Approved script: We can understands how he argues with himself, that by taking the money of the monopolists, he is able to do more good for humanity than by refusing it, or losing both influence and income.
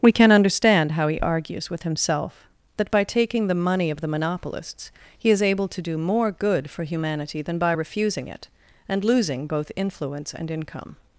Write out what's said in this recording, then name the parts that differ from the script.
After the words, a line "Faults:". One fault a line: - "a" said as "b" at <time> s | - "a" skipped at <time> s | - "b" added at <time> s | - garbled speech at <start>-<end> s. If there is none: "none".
We can understand how he argues with himself, that by taking the money of the monopolists, he is able to do more good for humanity than by refusing it, and losing both influence and income.
Faults:
- "understands" said as "understand" at 0.3 s
- "or" said as "and" at 8.9 s